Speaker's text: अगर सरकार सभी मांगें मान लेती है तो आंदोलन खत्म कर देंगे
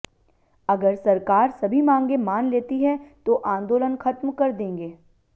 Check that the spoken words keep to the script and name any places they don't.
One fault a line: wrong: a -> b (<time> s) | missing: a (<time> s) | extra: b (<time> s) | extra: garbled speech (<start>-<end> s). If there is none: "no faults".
no faults